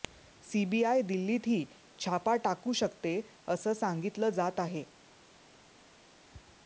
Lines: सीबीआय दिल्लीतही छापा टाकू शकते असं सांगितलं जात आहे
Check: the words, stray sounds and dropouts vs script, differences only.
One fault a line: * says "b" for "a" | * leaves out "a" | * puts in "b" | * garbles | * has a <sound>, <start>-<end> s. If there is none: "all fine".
all fine